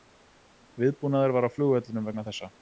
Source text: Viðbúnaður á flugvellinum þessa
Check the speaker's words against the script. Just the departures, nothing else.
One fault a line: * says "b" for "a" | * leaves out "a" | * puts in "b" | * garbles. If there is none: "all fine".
* puts in "var"
* puts in "vegna"